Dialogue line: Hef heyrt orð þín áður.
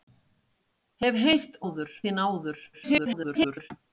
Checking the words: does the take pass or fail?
fail